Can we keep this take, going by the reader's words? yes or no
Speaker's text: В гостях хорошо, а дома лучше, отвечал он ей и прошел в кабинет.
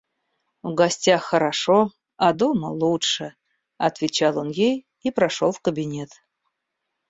yes